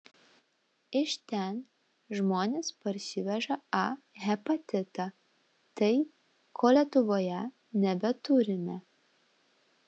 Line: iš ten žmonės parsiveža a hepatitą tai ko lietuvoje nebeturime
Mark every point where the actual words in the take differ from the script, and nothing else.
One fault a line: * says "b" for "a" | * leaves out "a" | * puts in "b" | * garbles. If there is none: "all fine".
all fine